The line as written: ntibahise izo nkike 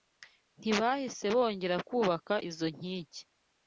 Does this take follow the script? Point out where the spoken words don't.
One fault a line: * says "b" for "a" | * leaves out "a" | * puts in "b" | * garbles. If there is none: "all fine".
* puts in "bongera kubaka"